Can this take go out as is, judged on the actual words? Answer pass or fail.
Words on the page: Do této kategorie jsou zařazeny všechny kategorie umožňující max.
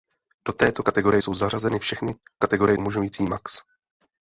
pass